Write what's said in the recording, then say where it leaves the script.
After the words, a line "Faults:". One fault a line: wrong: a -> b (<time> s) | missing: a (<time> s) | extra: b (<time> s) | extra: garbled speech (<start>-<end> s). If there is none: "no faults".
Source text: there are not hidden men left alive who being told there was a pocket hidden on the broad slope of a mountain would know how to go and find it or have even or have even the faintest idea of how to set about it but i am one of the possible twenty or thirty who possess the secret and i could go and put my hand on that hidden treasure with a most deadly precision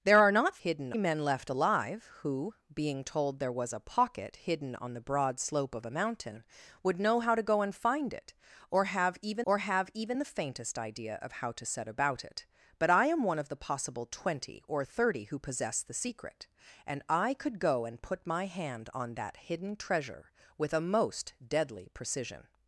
there are not hidden men left alive who being told there was a pocket hidden on the broad slope of a mountain would know how to go and find it or have even or have even the faintest idea of how to set about it but i am one of the possible twenty or thirty who possess the secret and i could go and put my hand on that hidden treasure with a most deadly precision
Faults:
no faults